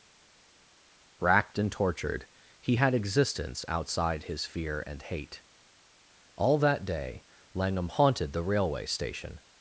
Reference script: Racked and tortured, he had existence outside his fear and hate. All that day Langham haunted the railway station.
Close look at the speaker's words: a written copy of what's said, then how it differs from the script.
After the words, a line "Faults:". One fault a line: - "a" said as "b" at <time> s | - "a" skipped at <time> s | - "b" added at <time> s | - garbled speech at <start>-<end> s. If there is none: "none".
Racked and tortured, he had existence outside his fear and hate. All that day Langham haunted the railway station.
Faults:
none